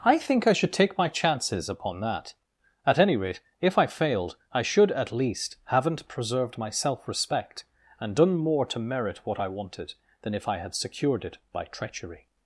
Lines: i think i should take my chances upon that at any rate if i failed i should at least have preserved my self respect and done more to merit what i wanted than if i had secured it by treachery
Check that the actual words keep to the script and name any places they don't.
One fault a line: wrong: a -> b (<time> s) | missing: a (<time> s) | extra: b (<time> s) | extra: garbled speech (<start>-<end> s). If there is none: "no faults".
wrong: have -> haven't (5.7 s)